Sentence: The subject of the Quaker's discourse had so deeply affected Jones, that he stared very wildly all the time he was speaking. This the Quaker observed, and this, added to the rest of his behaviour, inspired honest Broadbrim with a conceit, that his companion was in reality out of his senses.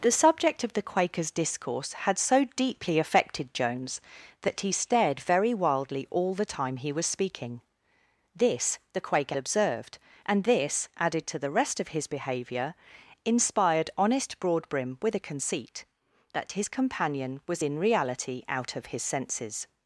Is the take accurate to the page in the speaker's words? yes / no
yes